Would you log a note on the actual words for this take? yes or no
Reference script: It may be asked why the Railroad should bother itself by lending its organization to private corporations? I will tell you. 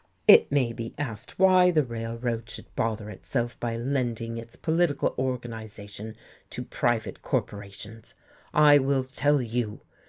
yes